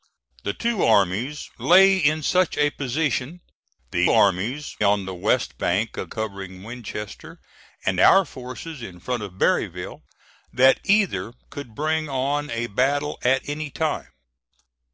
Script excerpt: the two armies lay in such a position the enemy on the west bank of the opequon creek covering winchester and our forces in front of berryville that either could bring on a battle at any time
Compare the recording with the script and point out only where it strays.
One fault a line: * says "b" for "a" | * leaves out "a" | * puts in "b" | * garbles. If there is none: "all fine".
* says "armies" for "enemy"
* leaves out "the opequon creek"